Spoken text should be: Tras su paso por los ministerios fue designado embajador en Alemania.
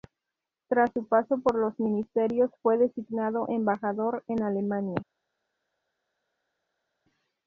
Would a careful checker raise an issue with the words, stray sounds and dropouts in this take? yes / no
no